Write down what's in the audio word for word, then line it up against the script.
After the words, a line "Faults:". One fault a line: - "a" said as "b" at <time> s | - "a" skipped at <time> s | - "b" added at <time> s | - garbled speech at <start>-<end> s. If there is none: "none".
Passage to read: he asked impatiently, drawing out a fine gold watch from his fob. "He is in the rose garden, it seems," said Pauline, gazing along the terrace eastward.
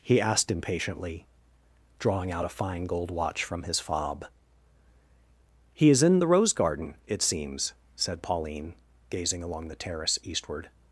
he asked impatiently, drawing out a fine gold watch from his fob. "He is in the rose garden, it seems," said Pauline, gazing along the terrace eastward.
Faults:
none